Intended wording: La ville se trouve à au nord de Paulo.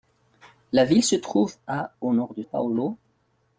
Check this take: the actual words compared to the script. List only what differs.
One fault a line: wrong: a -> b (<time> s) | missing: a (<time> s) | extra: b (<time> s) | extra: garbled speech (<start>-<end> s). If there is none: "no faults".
no faults